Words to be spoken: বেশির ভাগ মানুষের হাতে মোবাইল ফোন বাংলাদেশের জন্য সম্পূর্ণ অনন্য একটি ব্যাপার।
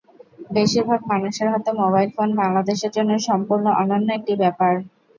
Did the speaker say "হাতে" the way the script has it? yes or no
yes